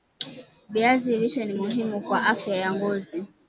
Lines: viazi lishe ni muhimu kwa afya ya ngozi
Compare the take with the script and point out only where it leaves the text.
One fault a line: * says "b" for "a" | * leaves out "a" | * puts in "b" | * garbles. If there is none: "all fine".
all fine